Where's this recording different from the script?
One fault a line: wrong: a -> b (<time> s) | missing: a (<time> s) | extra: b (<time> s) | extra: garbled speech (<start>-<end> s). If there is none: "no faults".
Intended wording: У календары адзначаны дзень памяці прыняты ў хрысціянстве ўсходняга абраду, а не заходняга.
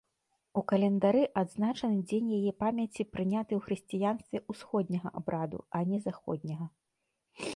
extra: яе (2.4 s)